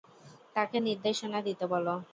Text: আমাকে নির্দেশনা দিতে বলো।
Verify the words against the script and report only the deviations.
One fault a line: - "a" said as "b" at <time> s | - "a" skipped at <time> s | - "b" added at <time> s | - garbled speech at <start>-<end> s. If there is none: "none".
- "আমাকে" said as "তাকে" at 0.6 s